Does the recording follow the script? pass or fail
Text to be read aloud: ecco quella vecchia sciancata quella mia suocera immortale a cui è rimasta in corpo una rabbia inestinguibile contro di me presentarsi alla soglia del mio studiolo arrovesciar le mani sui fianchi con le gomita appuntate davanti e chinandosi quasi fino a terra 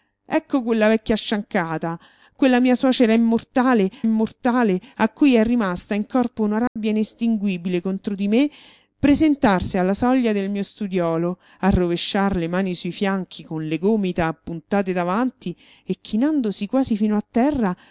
fail